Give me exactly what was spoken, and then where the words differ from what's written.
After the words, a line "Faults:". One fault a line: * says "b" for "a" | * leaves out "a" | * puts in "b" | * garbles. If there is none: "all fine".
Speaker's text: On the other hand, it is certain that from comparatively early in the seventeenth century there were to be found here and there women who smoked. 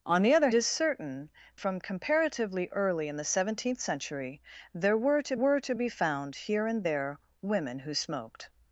On the other is certain from comparatively early in the seventeenth century there were to were to be found here and there women who smoked.
Faults:
* leaves out "hand it"
* leaves out "that"
* puts in "were to"